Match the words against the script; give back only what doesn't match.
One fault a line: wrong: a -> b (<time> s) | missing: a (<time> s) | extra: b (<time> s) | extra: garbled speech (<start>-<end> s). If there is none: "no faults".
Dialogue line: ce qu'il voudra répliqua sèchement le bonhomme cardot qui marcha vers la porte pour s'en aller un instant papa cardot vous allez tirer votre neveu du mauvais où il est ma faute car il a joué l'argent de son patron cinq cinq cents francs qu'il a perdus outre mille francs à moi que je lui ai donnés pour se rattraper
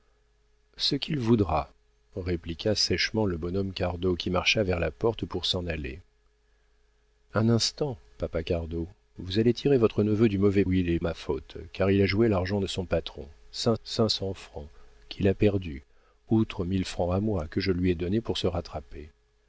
no faults